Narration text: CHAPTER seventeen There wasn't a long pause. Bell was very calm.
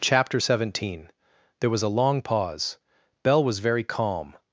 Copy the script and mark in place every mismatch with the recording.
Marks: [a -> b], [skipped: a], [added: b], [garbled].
CHAPTER seventeen There [wasn't -> was] a long pause. Bell was very calm.